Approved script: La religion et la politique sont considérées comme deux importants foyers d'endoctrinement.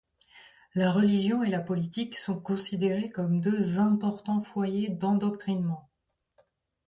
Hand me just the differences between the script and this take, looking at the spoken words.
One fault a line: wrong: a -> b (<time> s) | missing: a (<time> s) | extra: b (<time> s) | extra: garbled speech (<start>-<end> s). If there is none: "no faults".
no faults